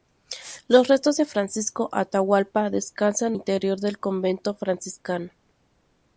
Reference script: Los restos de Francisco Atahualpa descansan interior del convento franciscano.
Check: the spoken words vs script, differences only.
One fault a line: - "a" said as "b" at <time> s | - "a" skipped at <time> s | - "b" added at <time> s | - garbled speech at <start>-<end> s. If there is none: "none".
none